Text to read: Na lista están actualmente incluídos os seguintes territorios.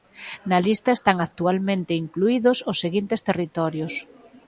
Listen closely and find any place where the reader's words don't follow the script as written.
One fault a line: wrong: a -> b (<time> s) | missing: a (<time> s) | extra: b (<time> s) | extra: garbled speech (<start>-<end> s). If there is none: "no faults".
no faults